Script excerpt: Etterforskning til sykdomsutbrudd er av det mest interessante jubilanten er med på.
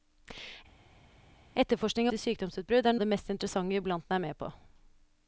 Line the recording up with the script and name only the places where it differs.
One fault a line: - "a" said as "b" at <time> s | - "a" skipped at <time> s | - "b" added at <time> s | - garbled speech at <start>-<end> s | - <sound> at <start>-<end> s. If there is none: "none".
none